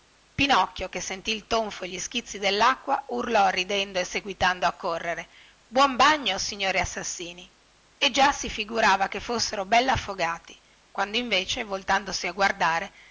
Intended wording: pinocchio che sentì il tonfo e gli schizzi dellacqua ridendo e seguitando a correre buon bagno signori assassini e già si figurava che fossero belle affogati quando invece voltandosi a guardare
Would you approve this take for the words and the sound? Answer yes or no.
no